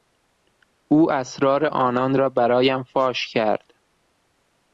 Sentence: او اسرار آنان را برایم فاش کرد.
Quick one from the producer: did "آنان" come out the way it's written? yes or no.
yes